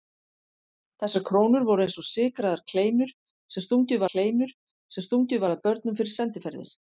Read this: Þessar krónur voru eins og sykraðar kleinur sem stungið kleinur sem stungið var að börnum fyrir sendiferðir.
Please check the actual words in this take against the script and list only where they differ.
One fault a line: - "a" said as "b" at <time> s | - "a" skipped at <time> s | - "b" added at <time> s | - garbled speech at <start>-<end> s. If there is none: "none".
none